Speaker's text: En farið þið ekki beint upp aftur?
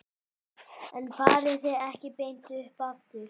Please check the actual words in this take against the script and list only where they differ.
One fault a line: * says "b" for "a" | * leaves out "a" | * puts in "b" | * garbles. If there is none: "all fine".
all fine